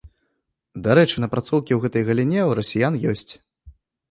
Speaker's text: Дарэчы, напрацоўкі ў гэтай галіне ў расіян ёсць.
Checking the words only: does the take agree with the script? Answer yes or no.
yes